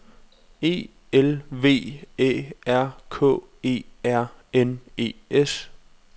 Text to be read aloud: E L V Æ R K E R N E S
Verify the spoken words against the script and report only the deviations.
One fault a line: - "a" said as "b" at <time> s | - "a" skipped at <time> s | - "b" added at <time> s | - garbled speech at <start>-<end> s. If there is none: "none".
none